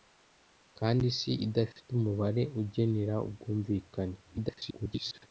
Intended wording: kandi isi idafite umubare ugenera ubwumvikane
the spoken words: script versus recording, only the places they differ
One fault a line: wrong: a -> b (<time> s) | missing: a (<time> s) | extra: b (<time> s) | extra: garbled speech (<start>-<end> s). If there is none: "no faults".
extra: garbled speech (4.2-5.3 s)